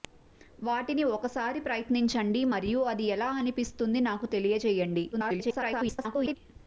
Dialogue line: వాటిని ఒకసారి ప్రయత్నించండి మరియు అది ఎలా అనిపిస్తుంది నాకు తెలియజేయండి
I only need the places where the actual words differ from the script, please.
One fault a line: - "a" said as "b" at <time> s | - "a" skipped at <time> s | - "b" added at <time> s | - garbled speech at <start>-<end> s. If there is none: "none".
- garbled speech at 5.1-6.4 s